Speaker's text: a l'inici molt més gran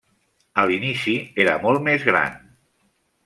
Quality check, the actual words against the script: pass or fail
fail